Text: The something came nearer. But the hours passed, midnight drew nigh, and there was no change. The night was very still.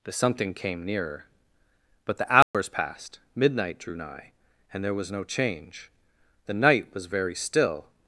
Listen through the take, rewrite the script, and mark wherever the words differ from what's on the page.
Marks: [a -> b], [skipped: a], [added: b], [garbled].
The something came nearer. But the hours passed, midnight drew nigh, and there was no change. The night was very still.